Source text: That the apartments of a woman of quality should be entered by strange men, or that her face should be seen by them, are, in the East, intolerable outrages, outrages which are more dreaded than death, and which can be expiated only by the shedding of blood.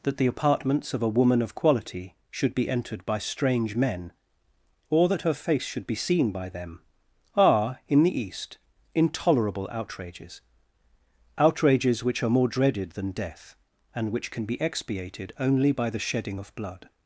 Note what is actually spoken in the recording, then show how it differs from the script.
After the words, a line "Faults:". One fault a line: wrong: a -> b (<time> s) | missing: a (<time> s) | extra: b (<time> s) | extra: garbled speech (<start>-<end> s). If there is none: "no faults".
That the apartments of a woman of quality should be entered by strange men, or that her face should be seen by them, are, in the East, intolerable outrages, outrages which are more dreaded than death, and which can be expiated only by the shedding of blood.
Faults:
no faults